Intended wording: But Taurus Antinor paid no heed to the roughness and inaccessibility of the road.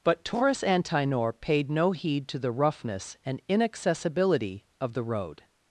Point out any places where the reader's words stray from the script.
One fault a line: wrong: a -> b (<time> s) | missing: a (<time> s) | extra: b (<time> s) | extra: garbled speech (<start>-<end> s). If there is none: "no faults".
no faults